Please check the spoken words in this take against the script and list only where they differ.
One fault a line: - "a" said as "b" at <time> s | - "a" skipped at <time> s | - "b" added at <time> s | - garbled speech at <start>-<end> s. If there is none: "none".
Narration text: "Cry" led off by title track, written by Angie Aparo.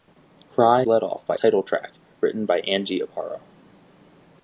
none